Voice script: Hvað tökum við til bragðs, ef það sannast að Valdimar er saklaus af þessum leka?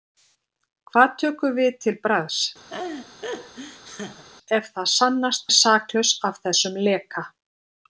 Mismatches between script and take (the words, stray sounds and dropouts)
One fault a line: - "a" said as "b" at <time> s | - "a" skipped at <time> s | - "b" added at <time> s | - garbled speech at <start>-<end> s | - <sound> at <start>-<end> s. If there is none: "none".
- laugh at 2.7-4.2 s
- "að Valdimar" skipped at 5.5 s